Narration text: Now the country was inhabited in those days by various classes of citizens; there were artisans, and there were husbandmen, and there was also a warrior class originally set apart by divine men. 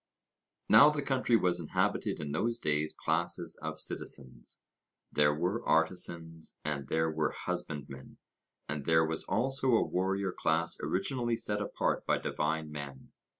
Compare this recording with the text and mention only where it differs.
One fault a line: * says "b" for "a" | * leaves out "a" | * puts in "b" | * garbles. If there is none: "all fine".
* leaves out "by various"